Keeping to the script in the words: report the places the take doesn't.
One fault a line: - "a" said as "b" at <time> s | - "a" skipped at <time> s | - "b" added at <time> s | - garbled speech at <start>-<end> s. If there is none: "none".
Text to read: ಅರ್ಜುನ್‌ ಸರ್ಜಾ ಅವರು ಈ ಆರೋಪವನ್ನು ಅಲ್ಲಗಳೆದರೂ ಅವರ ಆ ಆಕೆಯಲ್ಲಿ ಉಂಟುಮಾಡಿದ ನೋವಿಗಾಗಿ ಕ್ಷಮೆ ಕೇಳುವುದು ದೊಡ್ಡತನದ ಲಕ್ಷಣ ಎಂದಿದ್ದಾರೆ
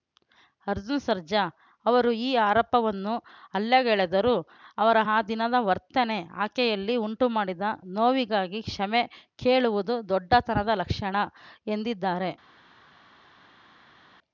- "ದಿನದ ವರ್ತನೆ" added at 5.2 s